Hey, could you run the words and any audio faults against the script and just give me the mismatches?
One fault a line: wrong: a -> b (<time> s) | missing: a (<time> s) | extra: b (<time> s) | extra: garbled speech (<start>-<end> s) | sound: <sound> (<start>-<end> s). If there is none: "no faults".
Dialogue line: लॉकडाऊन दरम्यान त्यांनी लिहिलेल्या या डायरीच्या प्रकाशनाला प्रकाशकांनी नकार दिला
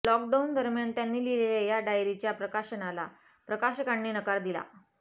no faults